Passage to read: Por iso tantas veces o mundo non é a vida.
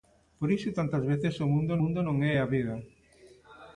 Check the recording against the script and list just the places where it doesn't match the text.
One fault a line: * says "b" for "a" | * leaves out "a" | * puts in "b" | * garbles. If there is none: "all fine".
* puts in "mundo"